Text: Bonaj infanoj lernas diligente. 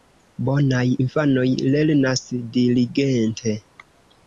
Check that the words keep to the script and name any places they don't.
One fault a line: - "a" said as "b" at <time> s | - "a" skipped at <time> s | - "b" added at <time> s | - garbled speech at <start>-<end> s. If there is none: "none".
none